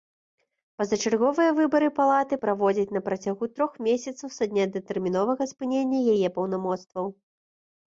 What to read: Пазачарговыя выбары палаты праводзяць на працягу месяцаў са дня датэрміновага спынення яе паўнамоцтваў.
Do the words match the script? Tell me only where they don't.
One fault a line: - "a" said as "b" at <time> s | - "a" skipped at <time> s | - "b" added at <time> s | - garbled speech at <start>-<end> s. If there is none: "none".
- "трох" added at 3.5 s